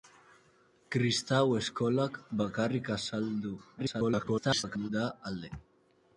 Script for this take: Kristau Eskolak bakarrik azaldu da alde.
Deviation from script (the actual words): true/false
true